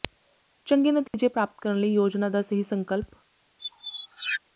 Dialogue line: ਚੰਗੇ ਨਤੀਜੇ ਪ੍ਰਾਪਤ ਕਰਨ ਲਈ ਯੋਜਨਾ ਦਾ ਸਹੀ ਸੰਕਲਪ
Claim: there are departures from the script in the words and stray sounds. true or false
true